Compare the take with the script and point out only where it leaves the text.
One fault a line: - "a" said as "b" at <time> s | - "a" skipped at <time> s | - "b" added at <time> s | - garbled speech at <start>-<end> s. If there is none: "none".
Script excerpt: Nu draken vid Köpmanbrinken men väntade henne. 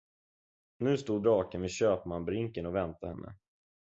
- "stod" added at 1.0 s
- "men" said as "och" at 2.6 s